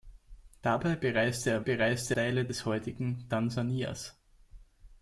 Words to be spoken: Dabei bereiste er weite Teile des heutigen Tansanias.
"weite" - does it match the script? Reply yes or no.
no